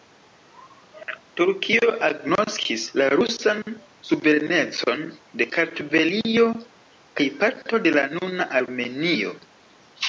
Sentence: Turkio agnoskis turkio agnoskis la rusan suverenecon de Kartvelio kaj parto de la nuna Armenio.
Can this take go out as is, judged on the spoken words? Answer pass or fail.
fail